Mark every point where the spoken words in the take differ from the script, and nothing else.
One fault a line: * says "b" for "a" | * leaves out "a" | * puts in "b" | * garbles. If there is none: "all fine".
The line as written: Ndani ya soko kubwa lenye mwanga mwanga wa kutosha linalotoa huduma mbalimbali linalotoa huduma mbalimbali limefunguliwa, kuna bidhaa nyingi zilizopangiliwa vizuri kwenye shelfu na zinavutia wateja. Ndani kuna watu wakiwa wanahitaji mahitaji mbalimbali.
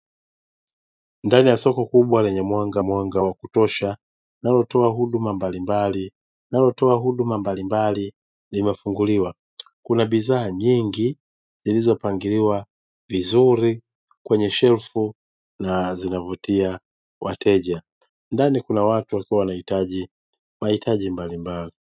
all fine